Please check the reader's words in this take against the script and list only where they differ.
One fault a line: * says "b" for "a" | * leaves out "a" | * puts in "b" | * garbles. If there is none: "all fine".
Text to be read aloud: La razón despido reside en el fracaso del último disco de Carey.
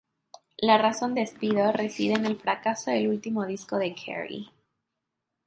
all fine